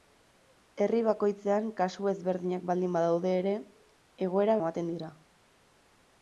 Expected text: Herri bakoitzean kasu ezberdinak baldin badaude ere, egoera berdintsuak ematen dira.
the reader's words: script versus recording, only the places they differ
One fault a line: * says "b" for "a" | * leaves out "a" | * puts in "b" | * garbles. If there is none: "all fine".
* leaves out "berdintsuak"